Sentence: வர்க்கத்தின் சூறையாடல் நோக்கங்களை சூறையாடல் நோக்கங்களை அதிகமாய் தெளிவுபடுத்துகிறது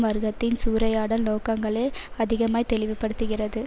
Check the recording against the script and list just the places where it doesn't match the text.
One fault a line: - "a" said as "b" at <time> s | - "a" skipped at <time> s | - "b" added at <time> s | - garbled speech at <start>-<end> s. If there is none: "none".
- "சூறையாடல் நோக்கங்களை" skipped at 1.9 s